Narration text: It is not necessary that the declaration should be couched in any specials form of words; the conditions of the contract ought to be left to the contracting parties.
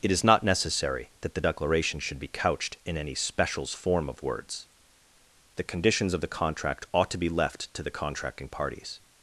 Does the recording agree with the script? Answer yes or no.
yes